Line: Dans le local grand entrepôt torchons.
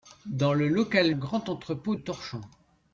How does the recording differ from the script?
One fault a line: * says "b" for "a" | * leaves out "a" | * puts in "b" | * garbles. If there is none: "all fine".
all fine